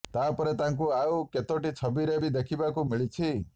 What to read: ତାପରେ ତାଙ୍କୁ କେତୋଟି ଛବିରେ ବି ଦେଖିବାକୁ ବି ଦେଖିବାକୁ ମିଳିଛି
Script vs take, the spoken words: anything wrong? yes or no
yes